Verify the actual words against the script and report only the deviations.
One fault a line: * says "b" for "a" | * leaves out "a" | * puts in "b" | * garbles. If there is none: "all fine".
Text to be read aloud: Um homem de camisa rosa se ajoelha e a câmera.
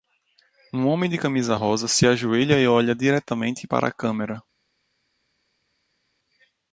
* puts in "olha diretamente para"